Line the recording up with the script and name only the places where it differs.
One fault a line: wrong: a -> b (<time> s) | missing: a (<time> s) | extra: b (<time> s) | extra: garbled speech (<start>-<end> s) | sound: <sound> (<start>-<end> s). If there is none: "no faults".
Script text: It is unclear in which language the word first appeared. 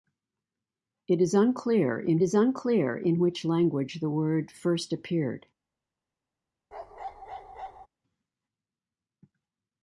extra: is unclear in (2.2 s)
sound: bark (6.7-7.9 s)